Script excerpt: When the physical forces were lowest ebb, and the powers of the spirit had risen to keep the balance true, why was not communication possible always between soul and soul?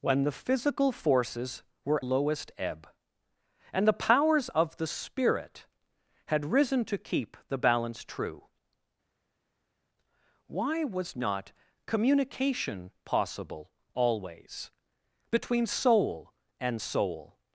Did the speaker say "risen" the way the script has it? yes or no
yes